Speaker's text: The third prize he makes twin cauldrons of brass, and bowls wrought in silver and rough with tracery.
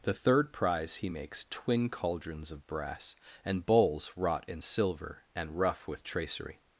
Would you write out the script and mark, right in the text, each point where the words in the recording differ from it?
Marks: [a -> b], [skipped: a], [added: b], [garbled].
The third prize he makes twin cauldrons of brass, and bowls wrought in silver and rough with tracery.